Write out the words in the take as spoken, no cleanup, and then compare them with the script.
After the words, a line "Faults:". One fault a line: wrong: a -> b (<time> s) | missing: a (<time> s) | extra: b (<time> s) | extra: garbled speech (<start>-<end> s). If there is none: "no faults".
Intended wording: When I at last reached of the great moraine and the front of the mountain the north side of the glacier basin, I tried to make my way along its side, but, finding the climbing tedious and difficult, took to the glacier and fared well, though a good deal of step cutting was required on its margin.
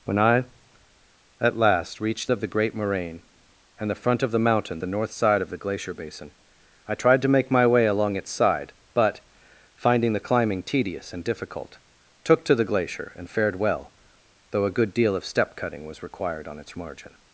When I at last reached of the great moraine and the front of the mountain the north side of the glacier basin, I tried to make my way along its side, but, finding the climbing tedious and difficult, took to the glacier and fared well, though a good deal of step cutting was required on its margin.
Faults:
no faults